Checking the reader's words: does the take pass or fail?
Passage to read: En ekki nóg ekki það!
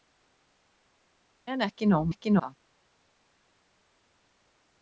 pass